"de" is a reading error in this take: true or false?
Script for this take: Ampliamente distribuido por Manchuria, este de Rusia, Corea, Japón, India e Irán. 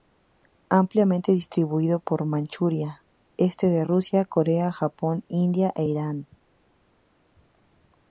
false